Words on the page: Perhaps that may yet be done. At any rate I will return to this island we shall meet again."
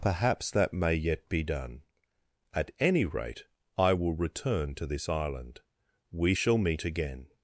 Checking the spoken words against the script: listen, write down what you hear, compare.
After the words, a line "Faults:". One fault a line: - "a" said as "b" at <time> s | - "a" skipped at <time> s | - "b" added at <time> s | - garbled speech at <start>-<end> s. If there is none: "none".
Perhaps that may yet be done. At any rate I will return to this island we shall meet again."
Faults:
none